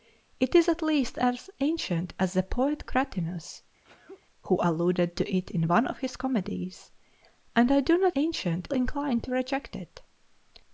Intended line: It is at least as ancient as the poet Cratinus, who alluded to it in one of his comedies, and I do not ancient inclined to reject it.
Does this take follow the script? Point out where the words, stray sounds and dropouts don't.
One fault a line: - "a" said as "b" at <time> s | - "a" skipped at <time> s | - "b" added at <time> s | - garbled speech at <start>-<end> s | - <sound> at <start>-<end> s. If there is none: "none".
- sneeze at 3.8-4.2 s